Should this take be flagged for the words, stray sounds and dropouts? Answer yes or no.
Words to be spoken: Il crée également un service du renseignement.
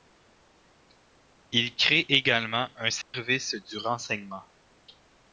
yes